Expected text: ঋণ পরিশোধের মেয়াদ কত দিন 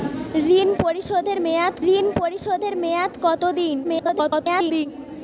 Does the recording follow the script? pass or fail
fail